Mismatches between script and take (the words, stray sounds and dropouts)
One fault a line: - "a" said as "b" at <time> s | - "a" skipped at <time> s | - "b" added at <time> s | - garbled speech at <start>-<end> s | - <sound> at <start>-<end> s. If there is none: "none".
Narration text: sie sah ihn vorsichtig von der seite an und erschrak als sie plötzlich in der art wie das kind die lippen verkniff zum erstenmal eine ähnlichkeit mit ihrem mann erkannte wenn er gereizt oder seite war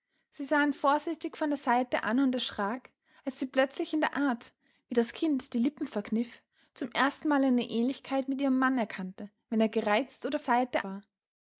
none